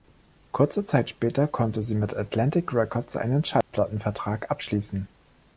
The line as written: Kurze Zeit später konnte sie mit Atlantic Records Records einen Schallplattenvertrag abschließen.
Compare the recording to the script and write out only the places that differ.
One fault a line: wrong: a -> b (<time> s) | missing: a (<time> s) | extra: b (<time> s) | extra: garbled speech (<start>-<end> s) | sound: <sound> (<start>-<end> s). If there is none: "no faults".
missing: Records (3.1 s)
sound: dropout (3.6-3.7 s)